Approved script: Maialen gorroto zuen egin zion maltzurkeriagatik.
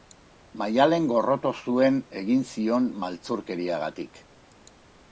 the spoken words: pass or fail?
pass